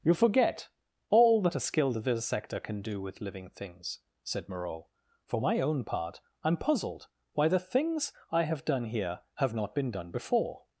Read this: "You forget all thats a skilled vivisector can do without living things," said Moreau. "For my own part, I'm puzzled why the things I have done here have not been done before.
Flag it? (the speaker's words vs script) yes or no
yes